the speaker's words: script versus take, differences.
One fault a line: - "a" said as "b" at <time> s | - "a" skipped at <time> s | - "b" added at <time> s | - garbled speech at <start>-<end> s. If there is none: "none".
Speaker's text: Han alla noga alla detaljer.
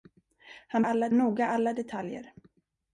none